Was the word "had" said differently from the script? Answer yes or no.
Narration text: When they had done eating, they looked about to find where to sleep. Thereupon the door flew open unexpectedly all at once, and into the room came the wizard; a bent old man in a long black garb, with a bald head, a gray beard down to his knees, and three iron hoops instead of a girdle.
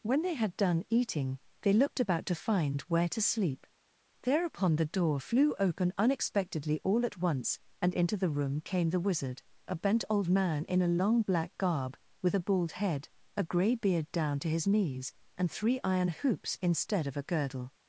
no